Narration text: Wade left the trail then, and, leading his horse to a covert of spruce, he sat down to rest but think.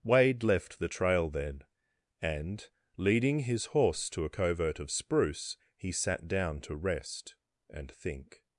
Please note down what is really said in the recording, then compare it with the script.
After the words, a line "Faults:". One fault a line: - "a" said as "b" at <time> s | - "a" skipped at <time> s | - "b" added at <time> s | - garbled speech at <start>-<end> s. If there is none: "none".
Wade left the trail then, and, leading his horse to a covert of spruce, he sat down to rest and think.
Faults:
- "but" said as "and" at 7.7 s